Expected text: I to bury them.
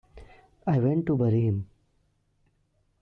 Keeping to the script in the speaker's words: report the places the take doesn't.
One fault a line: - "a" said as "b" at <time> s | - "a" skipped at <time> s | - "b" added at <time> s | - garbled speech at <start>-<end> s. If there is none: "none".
- "went" added at 0.8 s
- "them" said as "him" at 1.4 s